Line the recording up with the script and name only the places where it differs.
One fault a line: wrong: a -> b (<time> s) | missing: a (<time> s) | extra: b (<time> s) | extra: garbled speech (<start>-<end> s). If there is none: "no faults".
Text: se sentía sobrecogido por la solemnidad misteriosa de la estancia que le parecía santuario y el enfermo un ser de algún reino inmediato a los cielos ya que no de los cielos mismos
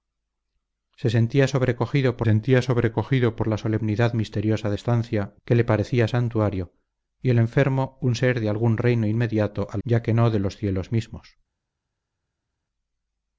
extra: sentía sobrecogido por (2.2 s)
missing: la (4.8 s)
missing: los cielos (9.8 s)